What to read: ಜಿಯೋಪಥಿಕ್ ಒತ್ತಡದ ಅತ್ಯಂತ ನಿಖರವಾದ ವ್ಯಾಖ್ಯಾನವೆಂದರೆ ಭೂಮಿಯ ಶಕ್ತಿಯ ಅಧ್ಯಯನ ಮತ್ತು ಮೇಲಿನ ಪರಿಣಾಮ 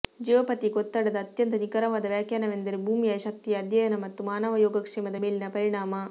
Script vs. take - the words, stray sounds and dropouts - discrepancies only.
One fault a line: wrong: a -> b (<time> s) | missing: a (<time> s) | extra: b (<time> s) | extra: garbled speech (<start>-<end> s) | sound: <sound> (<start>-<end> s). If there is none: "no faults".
extra: ಮಾನವ ಯೋಗಕ್ಷೇಮದ (4.2 s)